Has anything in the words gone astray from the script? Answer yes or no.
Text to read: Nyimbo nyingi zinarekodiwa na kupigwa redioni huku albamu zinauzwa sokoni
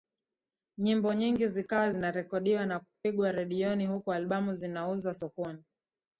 yes